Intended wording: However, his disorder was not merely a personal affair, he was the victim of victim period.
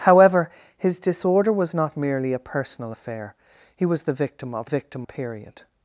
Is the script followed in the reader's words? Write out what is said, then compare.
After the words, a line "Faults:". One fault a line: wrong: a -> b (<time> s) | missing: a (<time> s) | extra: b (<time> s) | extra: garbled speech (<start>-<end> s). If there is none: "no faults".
However, his disorder was not merely a personal affair, he was the victim of victim period.
Faults:
no faults